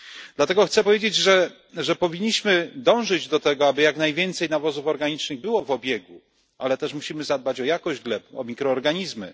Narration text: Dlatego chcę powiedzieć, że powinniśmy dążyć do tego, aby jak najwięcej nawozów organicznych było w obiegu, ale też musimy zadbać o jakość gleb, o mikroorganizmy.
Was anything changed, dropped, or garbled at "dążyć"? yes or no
no